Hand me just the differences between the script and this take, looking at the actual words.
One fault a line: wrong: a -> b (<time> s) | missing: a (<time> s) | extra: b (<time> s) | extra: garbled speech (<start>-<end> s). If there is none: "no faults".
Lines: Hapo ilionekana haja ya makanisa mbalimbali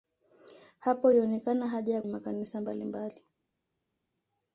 no faults